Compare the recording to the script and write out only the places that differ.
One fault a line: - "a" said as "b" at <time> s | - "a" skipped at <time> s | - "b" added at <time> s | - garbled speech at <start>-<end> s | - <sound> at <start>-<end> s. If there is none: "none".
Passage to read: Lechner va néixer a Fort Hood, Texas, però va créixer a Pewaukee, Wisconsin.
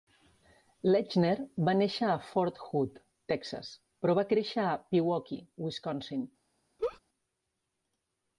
- laugh at 6.8-7.0 s